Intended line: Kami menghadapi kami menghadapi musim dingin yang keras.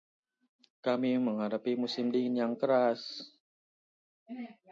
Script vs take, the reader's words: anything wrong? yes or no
yes